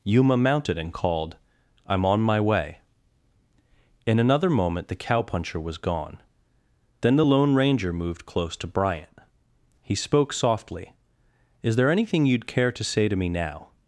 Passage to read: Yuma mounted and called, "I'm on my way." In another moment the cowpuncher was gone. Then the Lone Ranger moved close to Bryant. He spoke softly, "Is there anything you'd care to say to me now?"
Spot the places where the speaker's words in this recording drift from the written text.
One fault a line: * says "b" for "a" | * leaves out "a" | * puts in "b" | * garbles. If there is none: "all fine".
all fine